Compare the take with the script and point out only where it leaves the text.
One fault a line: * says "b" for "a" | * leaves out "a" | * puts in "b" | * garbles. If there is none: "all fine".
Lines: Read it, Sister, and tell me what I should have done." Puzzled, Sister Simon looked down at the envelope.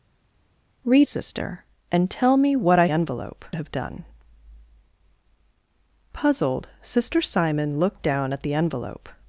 * leaves out "it"
* says "envelope" for "should"